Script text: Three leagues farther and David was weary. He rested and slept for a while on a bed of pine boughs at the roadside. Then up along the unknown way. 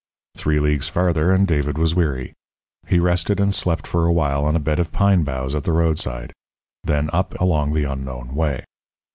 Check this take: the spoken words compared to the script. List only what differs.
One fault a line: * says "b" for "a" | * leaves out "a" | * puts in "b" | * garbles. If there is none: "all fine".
all fine